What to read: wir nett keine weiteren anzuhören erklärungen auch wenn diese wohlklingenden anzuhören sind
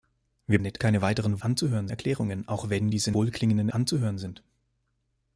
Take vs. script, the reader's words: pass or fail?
pass